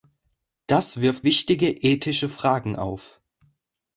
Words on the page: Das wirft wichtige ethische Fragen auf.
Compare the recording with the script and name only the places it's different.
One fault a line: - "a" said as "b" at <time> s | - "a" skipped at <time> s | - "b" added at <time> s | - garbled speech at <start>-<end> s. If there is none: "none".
none